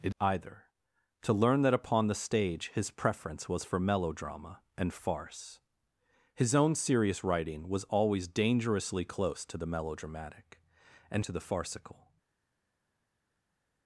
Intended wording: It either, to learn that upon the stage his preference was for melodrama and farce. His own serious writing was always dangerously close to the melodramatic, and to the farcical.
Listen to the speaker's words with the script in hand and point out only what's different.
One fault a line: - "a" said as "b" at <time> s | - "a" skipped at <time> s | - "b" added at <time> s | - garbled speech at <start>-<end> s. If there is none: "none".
none